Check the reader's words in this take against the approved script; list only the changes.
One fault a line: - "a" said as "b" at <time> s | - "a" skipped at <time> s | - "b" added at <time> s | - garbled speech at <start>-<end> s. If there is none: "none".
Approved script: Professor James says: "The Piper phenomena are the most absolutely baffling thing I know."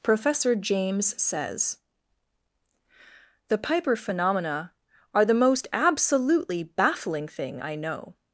none